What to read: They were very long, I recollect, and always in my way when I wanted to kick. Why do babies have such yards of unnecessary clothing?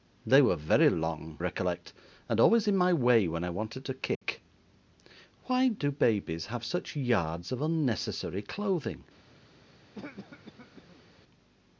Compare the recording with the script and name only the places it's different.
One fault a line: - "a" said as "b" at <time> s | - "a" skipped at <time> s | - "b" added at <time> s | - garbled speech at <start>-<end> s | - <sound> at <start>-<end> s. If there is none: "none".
- "I" skipped at 1.4 s
- dropout at 4.1-4.2 s
- cough at 9.9-11.0 s